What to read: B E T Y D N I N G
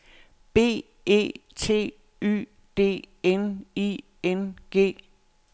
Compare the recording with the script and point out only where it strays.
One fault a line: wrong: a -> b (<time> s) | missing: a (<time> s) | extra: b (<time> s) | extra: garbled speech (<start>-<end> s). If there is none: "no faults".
no faults